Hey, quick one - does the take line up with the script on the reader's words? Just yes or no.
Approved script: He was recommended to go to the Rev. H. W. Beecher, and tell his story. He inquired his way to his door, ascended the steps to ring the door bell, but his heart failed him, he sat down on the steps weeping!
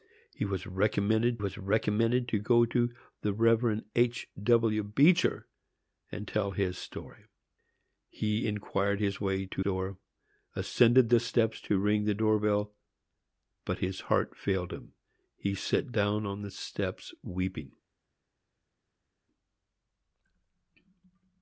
no